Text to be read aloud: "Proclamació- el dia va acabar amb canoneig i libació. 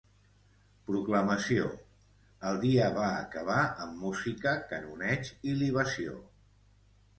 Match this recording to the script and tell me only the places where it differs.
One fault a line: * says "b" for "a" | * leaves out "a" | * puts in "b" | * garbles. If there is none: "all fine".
* puts in "música"